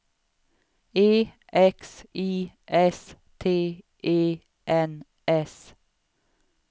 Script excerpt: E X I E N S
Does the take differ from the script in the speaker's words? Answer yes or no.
yes